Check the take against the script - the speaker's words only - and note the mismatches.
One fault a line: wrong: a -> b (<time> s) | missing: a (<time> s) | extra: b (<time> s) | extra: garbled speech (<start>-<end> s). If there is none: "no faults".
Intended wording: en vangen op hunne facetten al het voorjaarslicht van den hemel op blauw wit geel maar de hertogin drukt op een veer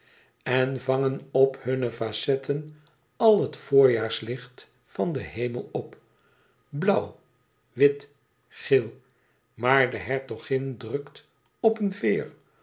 no faults